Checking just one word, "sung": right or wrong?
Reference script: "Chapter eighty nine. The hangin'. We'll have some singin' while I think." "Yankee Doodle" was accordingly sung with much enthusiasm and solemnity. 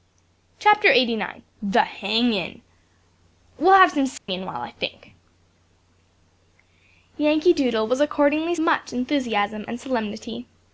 wrong